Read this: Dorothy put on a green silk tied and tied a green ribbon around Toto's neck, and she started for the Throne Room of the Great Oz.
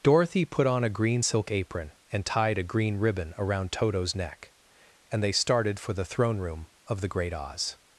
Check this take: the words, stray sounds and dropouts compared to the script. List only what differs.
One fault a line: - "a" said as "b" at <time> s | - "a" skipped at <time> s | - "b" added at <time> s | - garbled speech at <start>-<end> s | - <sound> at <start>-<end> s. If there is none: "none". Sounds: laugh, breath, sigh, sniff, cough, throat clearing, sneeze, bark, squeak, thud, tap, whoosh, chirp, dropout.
- "tied" said as "apron" at 1.5 s
- "she" said as "they" at 5.2 s